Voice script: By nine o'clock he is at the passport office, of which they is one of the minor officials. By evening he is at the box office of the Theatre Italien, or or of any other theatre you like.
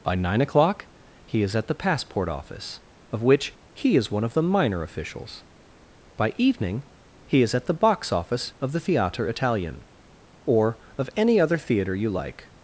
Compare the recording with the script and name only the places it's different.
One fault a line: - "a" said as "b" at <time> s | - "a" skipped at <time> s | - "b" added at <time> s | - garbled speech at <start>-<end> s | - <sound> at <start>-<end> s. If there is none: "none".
- "they" said as "he" at 3.8 s
- "or" skipped at 10.8 s